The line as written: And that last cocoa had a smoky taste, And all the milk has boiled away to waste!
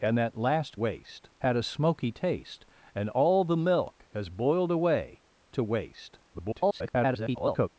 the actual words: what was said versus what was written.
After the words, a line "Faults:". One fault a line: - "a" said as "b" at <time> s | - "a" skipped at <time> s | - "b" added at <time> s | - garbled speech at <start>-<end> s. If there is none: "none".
And that last waste had a smoky taste, And all the milk has boiled away to waste! [garbled]
Faults:
- "cocoa" said as "waste" at 0.7 s
- garbled speech at 6.3-7.7 s